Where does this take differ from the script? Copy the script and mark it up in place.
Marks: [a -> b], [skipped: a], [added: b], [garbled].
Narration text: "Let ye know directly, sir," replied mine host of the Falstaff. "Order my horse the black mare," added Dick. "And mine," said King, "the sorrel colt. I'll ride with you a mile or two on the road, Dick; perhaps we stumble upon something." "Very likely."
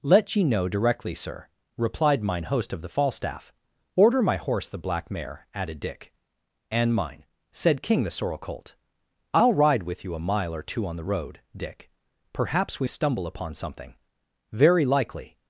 "Let ye know directly, sir," replied mine host of the Falstaff. "Order my horse the black mare," added Dick. "And mine," said King, "the sorrel colt. I'll ride with you a mile or two on the road, Dick; perhaps we stumble upon something." "Very likely."